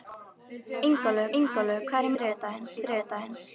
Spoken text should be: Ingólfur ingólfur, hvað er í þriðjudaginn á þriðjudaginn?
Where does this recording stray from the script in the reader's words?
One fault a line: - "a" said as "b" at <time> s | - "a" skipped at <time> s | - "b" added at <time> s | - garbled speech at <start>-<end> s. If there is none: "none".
none